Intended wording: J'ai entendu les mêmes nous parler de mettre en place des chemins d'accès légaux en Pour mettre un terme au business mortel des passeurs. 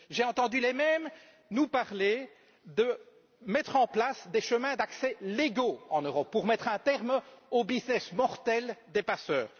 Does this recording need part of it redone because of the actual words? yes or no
yes